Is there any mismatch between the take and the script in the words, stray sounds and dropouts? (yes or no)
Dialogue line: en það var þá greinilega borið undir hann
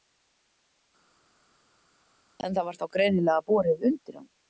no